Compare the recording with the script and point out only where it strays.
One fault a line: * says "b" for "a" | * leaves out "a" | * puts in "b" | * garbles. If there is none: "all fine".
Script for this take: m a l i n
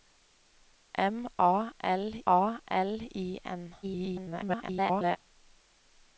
* puts in "a l"
* garbles